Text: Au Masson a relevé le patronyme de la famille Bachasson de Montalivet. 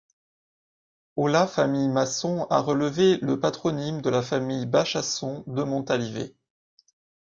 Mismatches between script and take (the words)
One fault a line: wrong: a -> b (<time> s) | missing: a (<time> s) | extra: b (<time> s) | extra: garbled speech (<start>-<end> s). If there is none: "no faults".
extra: la famille (1.3 s)